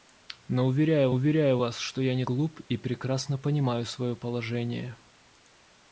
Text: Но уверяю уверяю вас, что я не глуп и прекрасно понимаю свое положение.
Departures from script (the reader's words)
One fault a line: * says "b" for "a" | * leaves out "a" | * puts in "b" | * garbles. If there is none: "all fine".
all fine